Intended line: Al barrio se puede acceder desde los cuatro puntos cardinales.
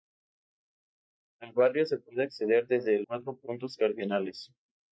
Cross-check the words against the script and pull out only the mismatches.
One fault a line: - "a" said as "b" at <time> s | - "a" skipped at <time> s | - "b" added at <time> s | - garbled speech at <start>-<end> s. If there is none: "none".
- "los" skipped at 3.0 s